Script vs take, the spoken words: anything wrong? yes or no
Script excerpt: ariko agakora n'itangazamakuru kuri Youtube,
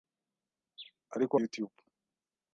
yes